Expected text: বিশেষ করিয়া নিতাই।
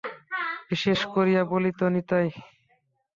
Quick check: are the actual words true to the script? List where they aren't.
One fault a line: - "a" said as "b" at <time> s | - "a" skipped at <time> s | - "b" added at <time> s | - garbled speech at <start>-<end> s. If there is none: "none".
- "বলিত" added at 1.4 s